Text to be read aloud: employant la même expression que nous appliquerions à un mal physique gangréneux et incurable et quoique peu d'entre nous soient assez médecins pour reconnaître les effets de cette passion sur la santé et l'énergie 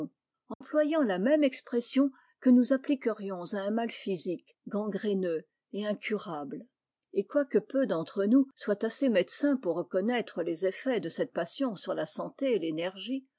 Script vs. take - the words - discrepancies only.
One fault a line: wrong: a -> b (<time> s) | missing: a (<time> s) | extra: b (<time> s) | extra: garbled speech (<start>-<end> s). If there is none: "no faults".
no faults